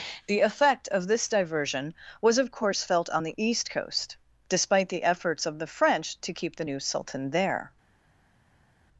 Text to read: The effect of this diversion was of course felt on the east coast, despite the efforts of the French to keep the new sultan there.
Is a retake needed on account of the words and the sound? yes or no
no